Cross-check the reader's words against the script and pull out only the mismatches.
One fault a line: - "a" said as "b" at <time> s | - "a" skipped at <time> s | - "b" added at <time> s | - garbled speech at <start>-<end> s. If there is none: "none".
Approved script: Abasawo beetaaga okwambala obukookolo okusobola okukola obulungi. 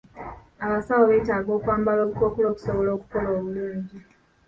none